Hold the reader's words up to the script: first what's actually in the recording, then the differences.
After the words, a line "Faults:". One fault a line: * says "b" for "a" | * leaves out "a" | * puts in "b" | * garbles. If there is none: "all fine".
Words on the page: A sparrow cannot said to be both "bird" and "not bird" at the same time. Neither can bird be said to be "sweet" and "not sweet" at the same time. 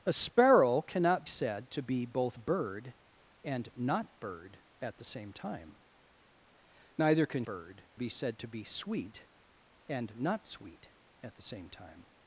A sparrow cannot said to be both "bird" and "not bird" at the same time. Neither can bird be said to be "sweet" and "not sweet" at the same time.
Faults:
all fine